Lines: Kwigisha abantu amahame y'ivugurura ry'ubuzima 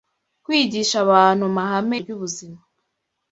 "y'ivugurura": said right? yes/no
no